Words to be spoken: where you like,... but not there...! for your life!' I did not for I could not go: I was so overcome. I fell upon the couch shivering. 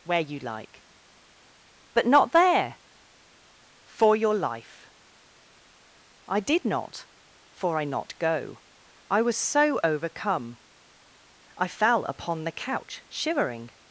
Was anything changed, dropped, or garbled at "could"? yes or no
yes